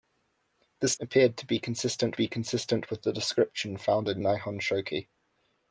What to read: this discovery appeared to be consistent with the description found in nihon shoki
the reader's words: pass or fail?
fail